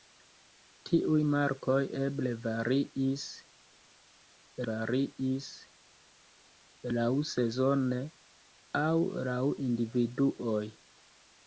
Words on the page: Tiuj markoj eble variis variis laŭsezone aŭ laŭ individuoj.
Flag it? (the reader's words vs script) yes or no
no